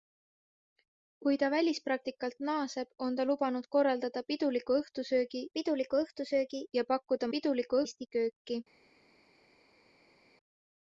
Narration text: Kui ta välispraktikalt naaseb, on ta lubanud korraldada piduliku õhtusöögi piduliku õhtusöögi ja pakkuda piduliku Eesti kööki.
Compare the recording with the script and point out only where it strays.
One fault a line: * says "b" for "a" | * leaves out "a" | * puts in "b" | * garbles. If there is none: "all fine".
all fine